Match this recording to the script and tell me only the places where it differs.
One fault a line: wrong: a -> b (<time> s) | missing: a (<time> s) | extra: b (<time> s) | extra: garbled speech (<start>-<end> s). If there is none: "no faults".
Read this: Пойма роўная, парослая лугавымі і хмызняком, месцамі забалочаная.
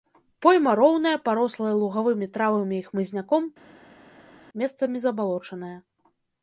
extra: травамі (2.4 s)